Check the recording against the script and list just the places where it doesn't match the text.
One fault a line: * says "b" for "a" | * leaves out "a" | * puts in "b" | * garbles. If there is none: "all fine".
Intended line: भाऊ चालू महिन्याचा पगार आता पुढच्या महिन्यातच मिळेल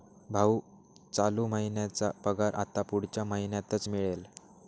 all fine